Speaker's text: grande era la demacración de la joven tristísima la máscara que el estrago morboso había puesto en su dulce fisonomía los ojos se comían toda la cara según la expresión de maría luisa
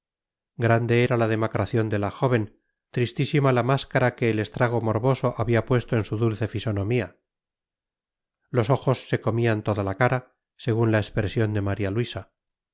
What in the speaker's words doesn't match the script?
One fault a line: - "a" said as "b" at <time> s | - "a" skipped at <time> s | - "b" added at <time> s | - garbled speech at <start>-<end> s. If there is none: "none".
none